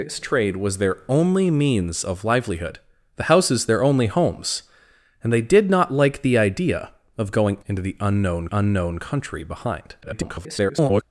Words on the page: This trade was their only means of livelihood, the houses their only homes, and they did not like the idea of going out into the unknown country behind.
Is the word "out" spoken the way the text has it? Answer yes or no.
no